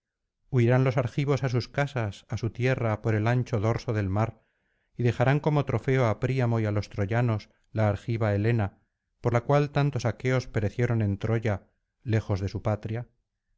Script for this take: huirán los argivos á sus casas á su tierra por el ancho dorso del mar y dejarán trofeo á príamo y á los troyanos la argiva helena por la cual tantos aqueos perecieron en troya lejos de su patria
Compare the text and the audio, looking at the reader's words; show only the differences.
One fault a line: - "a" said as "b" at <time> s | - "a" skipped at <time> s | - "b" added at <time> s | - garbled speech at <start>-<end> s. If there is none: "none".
- "como" added at 5.5 s